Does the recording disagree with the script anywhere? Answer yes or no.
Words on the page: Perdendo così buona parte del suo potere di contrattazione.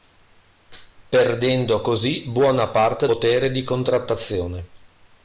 yes